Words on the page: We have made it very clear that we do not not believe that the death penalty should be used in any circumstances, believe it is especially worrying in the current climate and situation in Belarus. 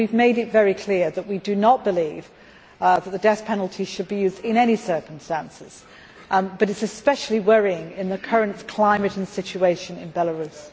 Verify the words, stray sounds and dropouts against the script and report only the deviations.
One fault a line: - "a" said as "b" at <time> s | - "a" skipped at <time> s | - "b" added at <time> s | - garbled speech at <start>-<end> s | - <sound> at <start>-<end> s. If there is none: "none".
- "not" skipped at 1.8 s
- "believe" said as "but" at 6.3 s